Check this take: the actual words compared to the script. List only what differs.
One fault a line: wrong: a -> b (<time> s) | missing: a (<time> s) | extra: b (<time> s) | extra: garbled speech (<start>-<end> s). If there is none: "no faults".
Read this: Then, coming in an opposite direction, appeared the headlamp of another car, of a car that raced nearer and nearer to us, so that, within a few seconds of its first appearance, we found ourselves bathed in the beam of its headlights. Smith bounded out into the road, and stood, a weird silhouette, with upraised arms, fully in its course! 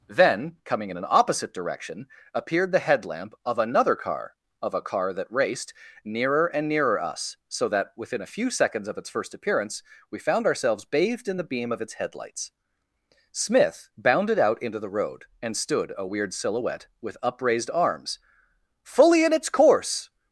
missing: to (7.0 s)